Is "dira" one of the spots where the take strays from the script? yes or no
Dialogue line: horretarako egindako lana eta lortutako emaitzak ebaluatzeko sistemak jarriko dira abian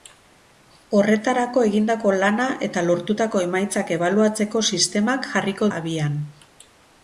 yes